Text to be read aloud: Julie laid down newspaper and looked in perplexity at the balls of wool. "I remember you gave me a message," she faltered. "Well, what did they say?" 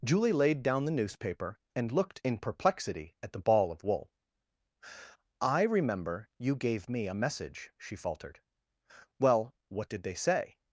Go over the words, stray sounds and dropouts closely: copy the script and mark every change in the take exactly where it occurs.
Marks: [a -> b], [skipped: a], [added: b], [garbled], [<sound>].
Julie laid down [added: the] newspaper and looked in perplexity at the [balls -> ball] of wool. "I remember you gave me a message," she faltered. "Well, what did they say?"